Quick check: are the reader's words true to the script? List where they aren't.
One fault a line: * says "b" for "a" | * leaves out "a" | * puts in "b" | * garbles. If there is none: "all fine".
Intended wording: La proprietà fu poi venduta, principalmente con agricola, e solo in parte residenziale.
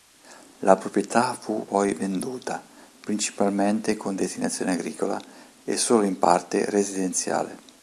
* puts in "destinazione"